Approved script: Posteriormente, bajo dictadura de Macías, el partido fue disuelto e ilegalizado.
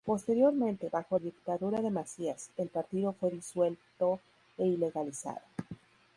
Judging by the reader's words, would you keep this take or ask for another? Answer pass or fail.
pass